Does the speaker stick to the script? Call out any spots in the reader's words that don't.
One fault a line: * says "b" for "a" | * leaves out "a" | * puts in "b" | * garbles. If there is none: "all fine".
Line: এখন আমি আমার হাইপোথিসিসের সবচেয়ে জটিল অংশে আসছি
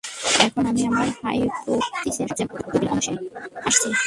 all fine